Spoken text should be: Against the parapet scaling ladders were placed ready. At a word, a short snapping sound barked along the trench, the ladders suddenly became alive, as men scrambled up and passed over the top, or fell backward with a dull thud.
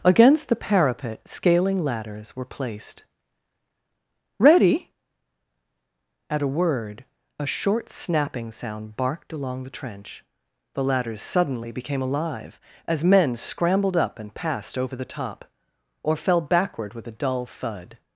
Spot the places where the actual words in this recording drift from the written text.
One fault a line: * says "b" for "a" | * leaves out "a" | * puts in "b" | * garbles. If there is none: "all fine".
all fine